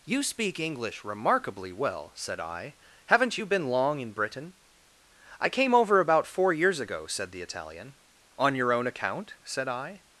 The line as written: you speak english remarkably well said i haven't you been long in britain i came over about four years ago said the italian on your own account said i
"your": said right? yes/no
yes